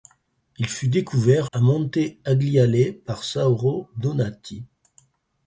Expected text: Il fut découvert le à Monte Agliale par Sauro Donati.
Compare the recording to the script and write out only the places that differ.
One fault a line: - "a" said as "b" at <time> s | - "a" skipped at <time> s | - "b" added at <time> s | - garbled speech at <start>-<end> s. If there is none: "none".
- "le" skipped at 1.5 s